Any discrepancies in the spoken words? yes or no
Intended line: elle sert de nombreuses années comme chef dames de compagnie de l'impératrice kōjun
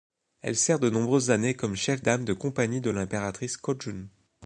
no